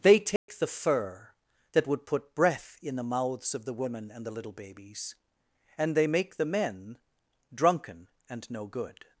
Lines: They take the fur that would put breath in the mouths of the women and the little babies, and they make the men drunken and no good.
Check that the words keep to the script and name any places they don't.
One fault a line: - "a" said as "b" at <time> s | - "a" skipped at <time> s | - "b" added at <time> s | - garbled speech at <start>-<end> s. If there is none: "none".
none